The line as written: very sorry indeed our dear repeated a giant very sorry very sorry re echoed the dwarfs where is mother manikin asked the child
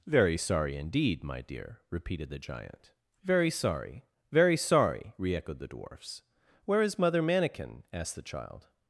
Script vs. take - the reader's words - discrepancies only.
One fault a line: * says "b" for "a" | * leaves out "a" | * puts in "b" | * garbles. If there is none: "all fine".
* says "my" for "our"
* says "the" for "a"